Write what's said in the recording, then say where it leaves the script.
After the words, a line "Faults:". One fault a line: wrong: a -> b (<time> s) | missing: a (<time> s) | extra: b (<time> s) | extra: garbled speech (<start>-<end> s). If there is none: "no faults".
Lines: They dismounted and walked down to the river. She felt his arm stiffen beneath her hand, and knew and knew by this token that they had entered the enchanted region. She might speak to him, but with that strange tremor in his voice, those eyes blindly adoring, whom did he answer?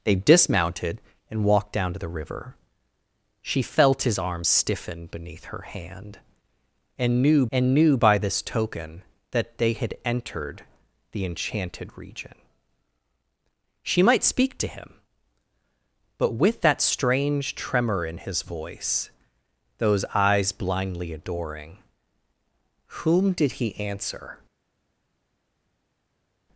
They dismounted and walked down to the river. She felt his arm stiffen beneath her hand, and knew and knew by this token that they had entered the enchanted region. She might speak to him, but with that strange tremor in his voice, those eyes blindly adoring, whom did he answer?
Faults:
no faults